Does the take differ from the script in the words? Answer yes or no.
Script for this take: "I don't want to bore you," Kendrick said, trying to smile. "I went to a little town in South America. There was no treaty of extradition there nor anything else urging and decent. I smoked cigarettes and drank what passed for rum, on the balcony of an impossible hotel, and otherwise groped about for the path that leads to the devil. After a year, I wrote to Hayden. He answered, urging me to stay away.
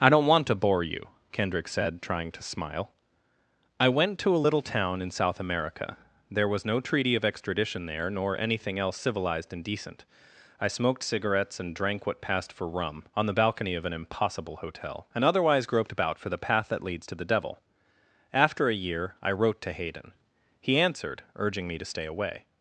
yes